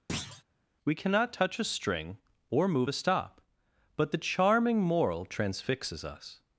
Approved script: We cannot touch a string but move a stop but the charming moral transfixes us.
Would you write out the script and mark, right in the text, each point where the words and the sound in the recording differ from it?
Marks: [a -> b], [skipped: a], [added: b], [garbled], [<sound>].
[thud] We cannot touch a string [but -> or] move a stop but the charming moral transfixes us.